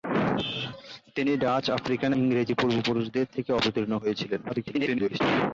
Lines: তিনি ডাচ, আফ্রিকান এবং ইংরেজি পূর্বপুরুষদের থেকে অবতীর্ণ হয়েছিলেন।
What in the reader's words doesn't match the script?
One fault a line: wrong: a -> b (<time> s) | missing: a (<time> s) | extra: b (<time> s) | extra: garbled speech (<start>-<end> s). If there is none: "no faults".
missing: এবং (2.1 s)
extra: garbled speech (4.5-5.2 s)